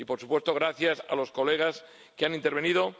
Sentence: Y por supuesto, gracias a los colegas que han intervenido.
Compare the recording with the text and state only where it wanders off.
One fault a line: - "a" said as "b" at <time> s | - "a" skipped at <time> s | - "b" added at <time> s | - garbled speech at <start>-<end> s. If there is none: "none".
none